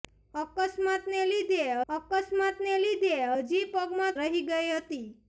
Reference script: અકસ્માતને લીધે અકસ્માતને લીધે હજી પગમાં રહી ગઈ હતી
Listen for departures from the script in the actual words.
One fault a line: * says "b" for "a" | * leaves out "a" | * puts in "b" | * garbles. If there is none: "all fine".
all fine